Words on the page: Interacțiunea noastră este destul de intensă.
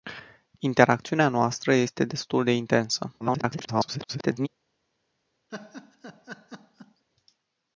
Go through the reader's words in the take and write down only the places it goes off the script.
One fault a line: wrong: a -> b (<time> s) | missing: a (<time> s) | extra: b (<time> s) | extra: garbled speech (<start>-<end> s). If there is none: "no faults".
extra: garbled speech (3.2-4.5 s)